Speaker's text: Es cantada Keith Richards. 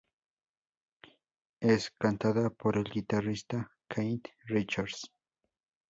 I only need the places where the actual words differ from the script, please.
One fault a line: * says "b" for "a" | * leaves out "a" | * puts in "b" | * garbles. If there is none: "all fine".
* puts in "por el guitarrista"